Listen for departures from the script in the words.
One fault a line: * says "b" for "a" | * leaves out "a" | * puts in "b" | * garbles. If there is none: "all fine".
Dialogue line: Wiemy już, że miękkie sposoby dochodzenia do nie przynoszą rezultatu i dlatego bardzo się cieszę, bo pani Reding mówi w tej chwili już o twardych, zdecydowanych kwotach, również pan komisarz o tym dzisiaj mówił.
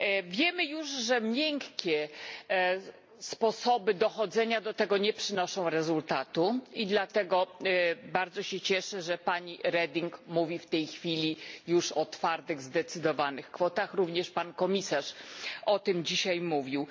* puts in "tego"
* says "że" for "bo"